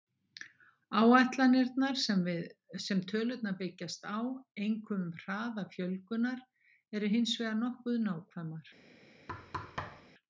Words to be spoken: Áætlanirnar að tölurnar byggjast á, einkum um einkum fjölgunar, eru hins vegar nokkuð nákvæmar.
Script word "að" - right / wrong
wrong